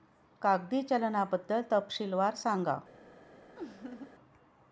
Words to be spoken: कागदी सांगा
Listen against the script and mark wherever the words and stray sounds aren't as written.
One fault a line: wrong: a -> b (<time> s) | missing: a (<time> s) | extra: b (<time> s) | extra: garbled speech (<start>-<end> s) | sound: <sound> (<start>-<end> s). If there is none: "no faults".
extra: चलनाबद्दल तपशीलवार (0.8 s)
sound: laugh (3.6-4.1 s)